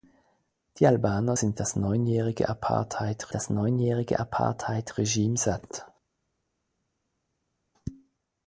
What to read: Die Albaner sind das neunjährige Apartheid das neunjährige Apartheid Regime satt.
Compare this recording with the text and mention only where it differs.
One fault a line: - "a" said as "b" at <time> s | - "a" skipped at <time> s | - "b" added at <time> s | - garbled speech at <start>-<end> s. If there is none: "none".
none